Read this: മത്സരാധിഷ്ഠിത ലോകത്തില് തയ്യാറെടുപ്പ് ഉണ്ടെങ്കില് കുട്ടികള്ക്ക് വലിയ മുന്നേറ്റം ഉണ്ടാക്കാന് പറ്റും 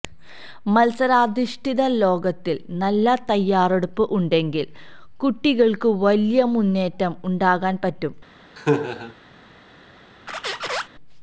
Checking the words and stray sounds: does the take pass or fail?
fail